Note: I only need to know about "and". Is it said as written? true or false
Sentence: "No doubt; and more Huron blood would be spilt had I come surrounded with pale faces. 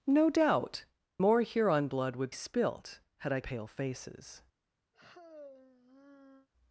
false